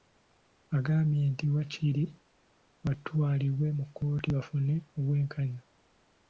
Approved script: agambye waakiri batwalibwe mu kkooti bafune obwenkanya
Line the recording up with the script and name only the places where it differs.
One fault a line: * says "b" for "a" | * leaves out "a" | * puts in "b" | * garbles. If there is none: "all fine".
* puts in "nti"